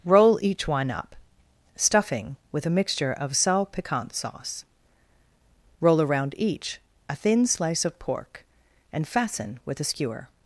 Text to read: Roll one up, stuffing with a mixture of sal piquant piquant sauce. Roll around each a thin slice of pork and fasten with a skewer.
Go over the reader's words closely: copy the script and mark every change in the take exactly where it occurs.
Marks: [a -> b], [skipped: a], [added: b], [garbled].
Roll [added: each] one up, stuffing with a mixture of sal piquant [skipped: piquant] sauce. Roll around each a thin slice of pork and fasten with a skewer.